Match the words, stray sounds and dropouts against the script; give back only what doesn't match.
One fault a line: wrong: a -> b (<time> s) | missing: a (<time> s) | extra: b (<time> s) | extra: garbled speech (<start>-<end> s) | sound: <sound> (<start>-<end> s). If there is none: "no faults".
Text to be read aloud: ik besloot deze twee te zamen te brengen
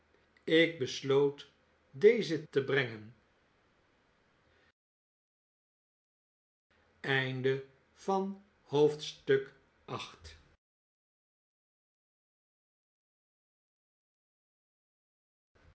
missing: twee te zamen (2.4 s)